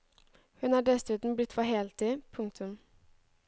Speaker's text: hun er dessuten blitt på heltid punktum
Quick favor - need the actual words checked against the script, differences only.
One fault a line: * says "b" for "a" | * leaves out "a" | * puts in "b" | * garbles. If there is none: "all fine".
all fine